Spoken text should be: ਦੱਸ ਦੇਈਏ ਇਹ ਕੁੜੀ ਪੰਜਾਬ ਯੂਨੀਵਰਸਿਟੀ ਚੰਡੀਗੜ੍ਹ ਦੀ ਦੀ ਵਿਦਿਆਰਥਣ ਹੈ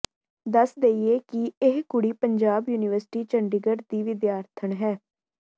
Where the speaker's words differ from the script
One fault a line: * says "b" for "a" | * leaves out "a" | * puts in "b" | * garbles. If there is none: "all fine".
* puts in "ਕਿ"
* leaves out "ਦੀ"